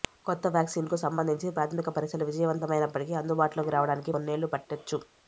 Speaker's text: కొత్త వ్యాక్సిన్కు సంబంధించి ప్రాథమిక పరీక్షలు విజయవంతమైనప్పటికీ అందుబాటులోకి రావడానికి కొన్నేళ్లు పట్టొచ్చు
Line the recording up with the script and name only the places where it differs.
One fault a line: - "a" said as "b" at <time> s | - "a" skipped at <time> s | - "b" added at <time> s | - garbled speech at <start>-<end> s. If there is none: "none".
none